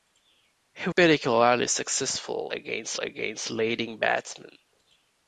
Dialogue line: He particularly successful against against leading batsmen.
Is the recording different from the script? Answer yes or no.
no